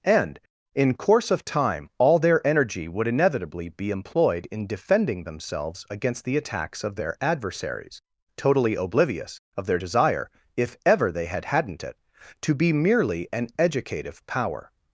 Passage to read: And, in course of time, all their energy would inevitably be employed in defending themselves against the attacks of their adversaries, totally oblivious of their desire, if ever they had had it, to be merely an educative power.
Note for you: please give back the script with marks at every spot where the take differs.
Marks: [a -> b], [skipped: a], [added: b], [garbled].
And, in course of time, all their energy would inevitably be employed in defending themselves against the attacks of their adversaries, totally oblivious of their desire, if ever they had [had -> hadn't] it, to be merely an educative power.